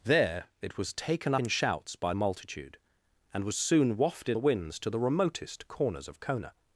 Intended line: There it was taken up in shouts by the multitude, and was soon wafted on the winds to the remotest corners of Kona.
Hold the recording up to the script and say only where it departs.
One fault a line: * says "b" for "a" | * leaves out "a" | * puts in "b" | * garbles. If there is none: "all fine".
* leaves out "up"
* leaves out "the"
* leaves out "on"